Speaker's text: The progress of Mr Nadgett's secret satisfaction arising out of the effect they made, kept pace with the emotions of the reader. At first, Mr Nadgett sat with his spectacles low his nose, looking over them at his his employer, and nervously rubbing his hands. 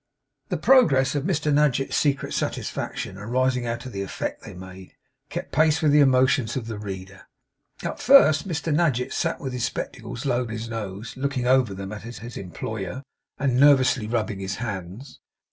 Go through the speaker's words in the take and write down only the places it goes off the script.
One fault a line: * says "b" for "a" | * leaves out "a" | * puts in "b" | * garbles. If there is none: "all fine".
all fine